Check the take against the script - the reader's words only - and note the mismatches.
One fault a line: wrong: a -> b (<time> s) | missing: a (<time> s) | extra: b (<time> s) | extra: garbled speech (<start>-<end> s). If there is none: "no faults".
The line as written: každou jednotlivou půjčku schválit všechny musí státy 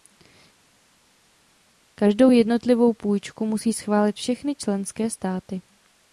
extra: musí (3.5 s)
wrong: musí -> členské (4.6 s)